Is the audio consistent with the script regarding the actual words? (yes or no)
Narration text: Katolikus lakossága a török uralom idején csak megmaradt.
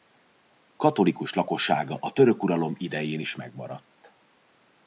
no